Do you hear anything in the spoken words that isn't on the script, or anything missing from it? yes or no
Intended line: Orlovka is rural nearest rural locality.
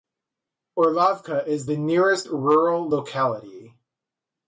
yes